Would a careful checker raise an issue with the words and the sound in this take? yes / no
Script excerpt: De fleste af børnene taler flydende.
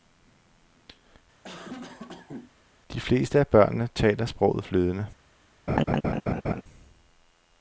yes